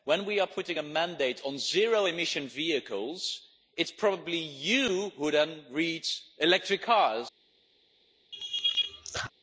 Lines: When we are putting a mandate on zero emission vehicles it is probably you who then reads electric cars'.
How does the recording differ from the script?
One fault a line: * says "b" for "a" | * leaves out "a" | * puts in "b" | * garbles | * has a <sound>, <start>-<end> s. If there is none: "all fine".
* has a laugh, 8.3-9.3 s